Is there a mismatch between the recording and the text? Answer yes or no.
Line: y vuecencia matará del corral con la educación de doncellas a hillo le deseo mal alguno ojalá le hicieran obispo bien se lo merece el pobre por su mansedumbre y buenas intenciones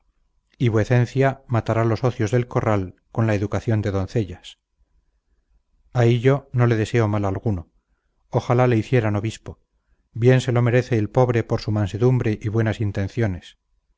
yes